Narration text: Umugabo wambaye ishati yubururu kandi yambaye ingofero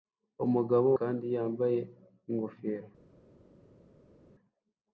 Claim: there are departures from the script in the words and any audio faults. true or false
true